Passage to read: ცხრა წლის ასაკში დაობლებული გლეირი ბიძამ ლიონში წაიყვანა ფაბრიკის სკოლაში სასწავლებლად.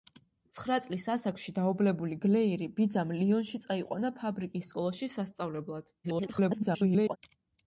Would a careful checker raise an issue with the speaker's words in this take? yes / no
yes